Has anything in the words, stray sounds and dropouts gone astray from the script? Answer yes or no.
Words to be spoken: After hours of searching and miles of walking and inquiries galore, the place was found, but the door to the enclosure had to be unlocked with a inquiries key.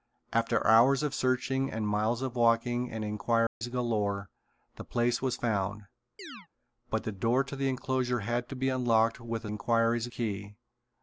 yes